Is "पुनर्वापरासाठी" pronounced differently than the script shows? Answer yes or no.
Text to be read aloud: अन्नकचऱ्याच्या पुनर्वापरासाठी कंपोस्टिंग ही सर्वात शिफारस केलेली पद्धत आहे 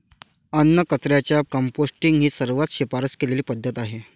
yes